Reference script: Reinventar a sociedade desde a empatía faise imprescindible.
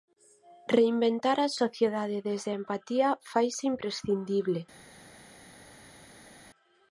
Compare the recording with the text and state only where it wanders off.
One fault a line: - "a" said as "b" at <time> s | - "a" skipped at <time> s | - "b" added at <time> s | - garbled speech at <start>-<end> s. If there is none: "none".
none